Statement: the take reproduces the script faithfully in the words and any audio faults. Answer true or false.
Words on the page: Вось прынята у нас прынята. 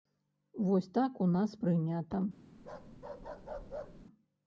false